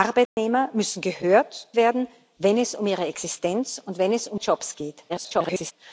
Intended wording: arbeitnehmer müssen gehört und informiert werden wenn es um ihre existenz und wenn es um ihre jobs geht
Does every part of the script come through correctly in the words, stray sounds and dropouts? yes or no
no